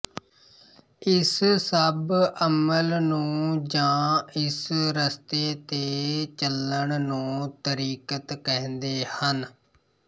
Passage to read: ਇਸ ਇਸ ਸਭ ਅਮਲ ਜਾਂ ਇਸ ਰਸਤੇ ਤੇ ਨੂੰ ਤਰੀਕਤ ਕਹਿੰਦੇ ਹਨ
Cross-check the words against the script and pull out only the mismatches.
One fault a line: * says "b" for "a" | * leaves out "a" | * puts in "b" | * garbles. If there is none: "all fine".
* leaves out "ਇਸ"
* puts in "ਨੂੰ"
* puts in "ਚੱਲਣ"